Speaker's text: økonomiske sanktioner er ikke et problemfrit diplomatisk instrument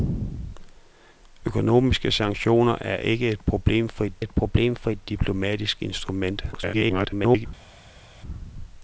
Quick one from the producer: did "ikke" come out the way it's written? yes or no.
yes